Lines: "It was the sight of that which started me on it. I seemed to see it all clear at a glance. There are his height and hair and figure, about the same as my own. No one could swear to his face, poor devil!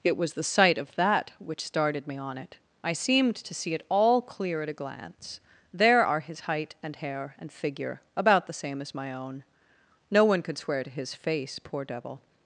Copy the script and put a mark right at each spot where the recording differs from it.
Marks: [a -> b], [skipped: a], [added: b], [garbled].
"It was the sight of that which started me on it. I seemed to see it all clear at a glance. There are his height and hair and figure, about the same as my own. No one could swear to his face, poor devil!